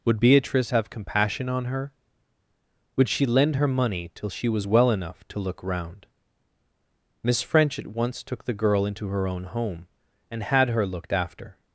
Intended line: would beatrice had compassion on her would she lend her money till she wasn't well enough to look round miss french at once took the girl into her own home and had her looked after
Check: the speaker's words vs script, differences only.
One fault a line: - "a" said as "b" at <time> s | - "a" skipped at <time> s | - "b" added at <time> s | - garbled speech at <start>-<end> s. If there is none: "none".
- "had" said as "have" at 0.7 s
- "wasn't" said as "was" at 4.5 s